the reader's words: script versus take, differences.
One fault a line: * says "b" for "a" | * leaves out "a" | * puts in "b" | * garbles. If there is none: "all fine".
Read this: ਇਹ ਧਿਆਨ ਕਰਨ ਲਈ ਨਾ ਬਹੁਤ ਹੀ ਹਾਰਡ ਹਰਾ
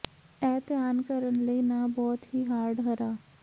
all fine